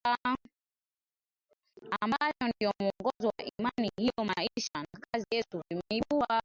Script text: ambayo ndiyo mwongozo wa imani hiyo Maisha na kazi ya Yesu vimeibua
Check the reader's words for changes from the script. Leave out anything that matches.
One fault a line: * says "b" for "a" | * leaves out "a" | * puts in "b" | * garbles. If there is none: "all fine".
* leaves out "ya"